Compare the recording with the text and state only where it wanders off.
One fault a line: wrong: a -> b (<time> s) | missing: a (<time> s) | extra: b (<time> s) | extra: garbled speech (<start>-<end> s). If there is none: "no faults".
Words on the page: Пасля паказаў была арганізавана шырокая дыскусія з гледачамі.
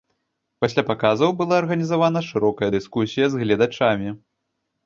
no faults